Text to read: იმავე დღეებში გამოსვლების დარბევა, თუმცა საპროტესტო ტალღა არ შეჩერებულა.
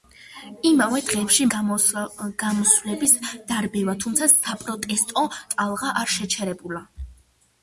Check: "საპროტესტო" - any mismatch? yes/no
no